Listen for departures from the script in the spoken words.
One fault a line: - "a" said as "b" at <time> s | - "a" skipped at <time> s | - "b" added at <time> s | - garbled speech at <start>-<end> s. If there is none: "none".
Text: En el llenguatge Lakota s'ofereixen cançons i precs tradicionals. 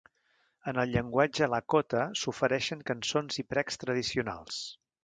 none